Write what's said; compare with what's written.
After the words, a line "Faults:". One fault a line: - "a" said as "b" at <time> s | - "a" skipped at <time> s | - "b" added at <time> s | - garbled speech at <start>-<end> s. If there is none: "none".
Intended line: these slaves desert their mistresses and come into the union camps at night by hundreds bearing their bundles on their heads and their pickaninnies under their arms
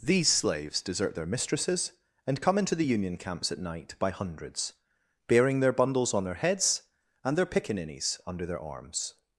these slaves desert their mistresses and come into the union camps at night by hundreds bearing their bundles on their heads and their pickaninnies under their arms
Faults:
none